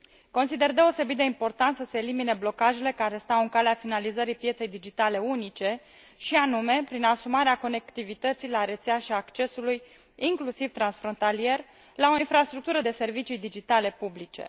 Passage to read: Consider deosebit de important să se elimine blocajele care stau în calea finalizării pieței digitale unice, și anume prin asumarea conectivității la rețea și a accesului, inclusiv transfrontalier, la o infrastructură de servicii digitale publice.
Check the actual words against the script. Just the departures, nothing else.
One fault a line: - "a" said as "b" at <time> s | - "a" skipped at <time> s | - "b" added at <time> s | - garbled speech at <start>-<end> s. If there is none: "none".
none